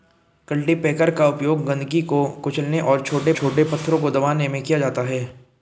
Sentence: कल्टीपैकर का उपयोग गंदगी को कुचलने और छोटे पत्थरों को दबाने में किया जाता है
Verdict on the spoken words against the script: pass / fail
fail